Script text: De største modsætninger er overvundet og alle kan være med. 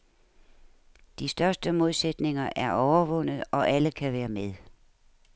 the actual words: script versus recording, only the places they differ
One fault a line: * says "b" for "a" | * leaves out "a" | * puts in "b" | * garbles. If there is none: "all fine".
all fine